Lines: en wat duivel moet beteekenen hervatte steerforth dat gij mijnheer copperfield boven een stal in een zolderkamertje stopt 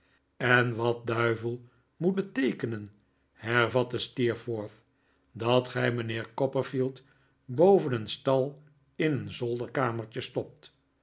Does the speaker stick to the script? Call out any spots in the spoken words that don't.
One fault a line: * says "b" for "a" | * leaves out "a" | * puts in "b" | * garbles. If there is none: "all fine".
all fine